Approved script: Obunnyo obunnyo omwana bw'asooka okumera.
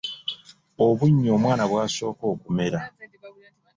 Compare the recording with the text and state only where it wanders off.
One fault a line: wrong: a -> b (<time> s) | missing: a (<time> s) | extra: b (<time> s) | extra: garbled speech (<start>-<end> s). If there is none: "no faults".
missing: obunnyo (1.3 s)